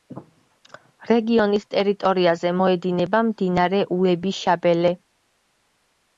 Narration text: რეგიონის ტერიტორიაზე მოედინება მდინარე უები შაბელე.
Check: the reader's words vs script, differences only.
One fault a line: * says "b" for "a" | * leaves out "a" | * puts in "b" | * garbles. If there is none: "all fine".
all fine